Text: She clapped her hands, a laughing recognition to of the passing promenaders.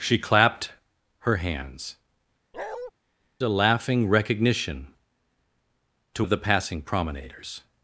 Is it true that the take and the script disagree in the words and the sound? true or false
true